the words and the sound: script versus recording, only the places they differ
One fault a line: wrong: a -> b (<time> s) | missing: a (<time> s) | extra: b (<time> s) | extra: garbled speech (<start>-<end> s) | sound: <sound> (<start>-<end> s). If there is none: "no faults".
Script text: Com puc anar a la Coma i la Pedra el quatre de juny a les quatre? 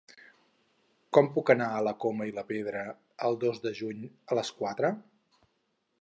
wrong: quatre -> dos (3.5 s)